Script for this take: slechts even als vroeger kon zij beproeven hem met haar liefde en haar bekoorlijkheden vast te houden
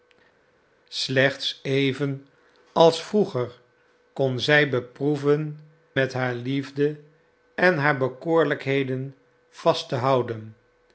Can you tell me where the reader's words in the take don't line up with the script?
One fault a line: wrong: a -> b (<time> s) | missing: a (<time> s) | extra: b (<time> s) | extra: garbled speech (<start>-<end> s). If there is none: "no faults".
missing: hem (5.6 s)